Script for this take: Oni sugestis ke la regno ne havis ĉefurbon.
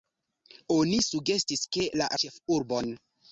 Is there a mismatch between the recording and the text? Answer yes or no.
yes